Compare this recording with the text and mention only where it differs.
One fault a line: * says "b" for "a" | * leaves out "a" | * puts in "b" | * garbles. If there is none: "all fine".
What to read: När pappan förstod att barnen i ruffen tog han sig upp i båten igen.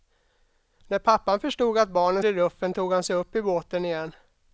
all fine